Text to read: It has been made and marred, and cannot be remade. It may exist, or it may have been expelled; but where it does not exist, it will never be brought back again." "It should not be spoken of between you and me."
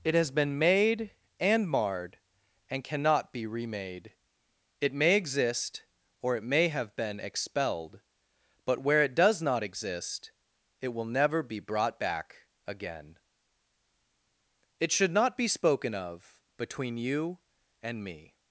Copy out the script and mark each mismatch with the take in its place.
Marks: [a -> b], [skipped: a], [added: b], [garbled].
It has been made and marred, and cannot be remade. It may exist, or it may have been expelled; but where it does not exist, it will never be brought back again." "It should not be spoken of between you and me."